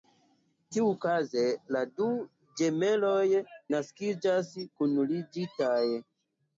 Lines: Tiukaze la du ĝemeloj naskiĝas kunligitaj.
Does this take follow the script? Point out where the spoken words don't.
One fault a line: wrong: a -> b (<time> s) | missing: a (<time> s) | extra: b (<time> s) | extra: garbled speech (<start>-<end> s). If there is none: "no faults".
no faults